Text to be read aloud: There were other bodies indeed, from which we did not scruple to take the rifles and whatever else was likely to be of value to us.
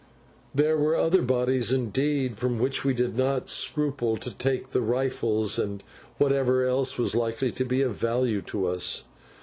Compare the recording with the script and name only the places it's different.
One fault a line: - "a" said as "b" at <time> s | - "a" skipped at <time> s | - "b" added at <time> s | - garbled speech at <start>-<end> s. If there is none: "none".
none